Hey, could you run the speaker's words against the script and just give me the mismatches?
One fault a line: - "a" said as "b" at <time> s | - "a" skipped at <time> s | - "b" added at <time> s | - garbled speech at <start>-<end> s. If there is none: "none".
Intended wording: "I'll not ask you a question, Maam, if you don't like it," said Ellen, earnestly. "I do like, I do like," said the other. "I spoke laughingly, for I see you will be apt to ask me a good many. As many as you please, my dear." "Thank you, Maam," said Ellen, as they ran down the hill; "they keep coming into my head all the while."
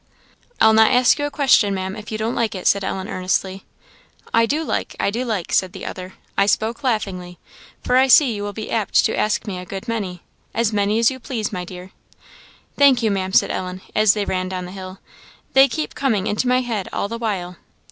none